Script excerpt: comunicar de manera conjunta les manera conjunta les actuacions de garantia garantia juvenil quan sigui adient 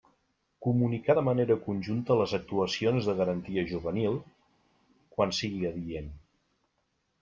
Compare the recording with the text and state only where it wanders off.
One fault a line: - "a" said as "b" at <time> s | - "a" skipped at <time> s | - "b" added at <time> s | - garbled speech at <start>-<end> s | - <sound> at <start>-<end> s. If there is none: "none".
- "manera conjunta les" skipped at 2.3 s
- "garantia" skipped at 3.6 s